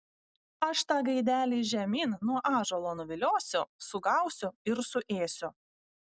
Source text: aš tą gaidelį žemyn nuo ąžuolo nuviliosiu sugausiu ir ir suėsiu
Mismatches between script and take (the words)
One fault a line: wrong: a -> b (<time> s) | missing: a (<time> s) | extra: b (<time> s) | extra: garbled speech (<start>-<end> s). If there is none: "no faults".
missing: ir (4.8 s)